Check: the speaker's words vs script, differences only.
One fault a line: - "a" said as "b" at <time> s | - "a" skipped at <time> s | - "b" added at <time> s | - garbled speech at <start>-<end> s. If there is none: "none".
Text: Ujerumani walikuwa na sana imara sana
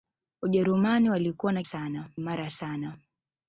none